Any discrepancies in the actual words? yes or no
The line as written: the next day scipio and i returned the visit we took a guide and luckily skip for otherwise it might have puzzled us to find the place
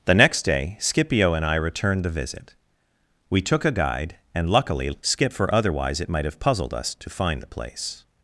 no